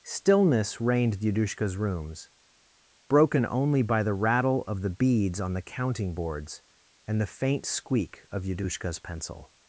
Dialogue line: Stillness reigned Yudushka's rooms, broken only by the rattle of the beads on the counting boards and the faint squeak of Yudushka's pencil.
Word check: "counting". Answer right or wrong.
right